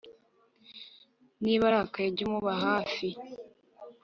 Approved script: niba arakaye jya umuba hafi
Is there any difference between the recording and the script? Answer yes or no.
no